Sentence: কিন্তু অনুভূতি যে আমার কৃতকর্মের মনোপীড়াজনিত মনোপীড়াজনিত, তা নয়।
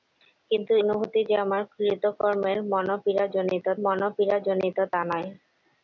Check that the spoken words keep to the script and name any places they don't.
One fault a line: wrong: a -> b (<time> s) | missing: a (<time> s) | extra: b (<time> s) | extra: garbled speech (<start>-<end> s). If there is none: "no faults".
no faults